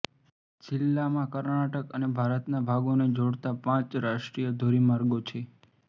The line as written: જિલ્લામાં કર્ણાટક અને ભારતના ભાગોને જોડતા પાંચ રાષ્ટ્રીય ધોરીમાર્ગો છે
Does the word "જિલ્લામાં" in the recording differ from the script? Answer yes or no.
no